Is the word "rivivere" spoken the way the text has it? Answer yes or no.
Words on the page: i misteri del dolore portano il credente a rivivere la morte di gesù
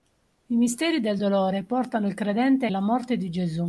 no